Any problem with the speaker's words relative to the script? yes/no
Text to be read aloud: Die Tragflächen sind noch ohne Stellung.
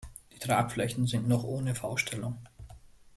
yes